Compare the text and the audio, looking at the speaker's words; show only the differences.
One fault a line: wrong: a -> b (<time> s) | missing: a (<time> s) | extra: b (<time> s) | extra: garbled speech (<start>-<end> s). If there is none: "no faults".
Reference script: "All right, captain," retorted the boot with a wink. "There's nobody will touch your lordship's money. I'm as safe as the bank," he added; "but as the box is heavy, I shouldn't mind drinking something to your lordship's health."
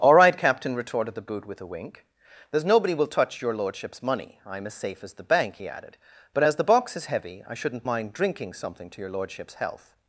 no faults